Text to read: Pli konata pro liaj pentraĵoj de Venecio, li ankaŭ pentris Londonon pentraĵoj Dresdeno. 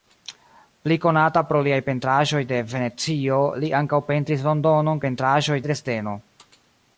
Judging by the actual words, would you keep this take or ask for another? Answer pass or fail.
pass